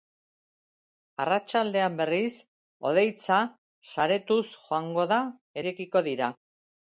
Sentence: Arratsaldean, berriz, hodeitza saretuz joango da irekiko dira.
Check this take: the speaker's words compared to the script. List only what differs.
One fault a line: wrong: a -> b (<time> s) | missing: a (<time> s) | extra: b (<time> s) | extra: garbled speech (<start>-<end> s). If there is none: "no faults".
no faults